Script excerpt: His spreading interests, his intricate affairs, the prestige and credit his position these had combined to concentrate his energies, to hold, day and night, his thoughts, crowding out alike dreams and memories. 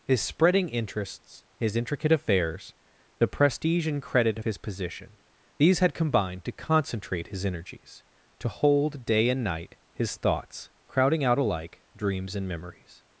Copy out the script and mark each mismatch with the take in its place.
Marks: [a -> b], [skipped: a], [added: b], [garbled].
His spreading interests, his intricate affairs, the prestige and credit his position these had combined to concentrate his energies, to hold, day and night, his thoughts, crowding out alike dreams and memories.